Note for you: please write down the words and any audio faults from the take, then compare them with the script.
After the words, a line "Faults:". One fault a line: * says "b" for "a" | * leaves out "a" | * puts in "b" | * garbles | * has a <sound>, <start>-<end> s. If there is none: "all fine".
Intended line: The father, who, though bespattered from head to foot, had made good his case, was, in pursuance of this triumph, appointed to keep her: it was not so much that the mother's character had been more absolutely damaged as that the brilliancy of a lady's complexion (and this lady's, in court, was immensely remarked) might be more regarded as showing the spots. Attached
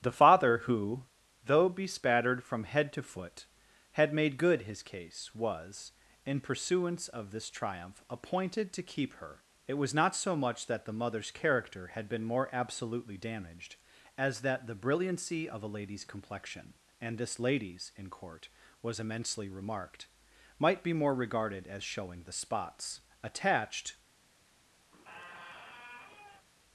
The father, who, though bespattered from head to foot, had made good his case, was, in pursuance of this triumph, appointed to keep her: it was not so much that the mother's character had been more absolutely damaged as that the brilliancy of a lady's complexion (and this lady's, in court, was immensely remarked) might be more regarded as showing the spots. Attached
Faults:
* has a squeak, 24.9-26.5 s